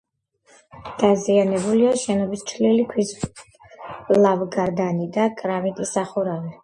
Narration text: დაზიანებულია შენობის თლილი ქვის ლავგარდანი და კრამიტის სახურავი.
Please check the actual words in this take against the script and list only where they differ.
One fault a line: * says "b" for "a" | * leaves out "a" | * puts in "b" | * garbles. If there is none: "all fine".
all fine